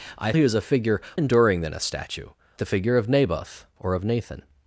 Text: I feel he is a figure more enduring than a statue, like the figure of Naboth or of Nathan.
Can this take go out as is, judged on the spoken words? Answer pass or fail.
fail